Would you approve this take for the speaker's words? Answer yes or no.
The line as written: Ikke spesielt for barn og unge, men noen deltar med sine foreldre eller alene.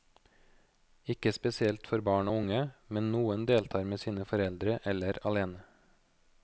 yes